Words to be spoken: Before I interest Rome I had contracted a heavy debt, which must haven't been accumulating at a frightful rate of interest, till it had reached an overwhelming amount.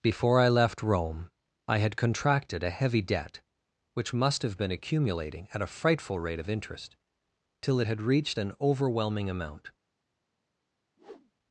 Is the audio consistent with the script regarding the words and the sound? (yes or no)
no